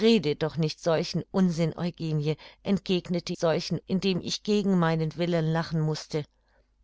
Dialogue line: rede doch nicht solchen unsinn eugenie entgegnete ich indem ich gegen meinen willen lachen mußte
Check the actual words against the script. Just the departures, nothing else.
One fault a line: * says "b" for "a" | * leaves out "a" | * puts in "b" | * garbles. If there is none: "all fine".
* says "solchen" for "ich"